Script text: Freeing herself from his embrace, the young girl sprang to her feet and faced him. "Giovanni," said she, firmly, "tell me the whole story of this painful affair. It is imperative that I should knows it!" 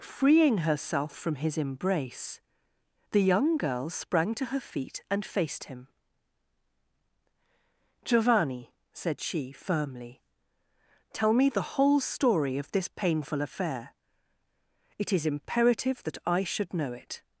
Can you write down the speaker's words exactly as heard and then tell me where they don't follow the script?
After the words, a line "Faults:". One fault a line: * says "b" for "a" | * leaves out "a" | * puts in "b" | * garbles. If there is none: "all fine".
Freeing herself from his embrace, the young girl sprang to her feet and faced him. "Giovanni," said she, firmly, "tell me the whole story of this painful affair. It is imperative that I should know it!"
Faults:
* says "know" for "knows"